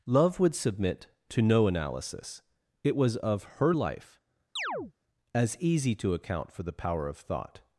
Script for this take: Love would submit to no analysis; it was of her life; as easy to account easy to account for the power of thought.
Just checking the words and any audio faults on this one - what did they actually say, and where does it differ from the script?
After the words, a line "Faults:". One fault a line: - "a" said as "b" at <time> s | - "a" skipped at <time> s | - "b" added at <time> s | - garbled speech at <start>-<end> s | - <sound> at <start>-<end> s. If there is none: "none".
Love would submit to no analysis; it was of her life; as easy to account for the power of thought.
Faults:
- chirp at 4.6-4.9 s
- "easy to account" skipped at 6.5 s